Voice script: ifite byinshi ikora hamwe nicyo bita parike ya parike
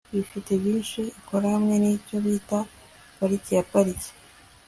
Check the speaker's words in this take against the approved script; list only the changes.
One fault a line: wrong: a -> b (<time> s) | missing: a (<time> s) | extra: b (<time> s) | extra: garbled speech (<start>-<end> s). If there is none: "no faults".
no faults